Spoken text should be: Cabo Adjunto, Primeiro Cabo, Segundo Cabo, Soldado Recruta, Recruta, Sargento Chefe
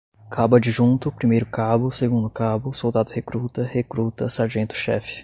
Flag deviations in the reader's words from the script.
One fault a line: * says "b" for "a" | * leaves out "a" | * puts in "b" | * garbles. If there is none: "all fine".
all fine